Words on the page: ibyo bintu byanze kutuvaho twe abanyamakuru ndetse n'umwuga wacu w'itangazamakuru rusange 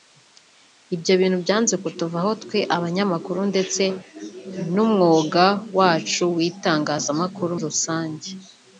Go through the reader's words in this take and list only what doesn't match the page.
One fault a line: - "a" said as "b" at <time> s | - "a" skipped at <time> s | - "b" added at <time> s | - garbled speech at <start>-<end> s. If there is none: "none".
none